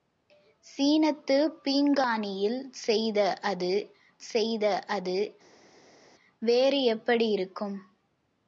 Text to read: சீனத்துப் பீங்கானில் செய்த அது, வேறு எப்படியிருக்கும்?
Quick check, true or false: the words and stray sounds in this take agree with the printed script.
false